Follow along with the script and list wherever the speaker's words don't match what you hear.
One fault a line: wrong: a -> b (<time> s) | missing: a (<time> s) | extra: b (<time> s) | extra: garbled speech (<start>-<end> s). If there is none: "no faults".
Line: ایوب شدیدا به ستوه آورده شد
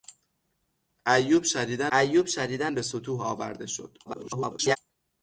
extra: ایوب شدیدا (1.9 s)
extra: garbled speech (4.1-4.8 s)